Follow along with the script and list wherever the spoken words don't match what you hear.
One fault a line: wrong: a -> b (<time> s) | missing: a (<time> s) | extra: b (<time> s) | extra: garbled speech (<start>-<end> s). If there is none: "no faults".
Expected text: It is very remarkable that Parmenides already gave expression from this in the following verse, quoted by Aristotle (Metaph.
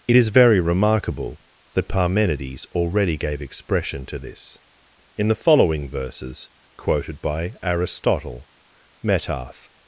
wrong: from -> to (4.1 s)
wrong: verse -> verses (5.9 s)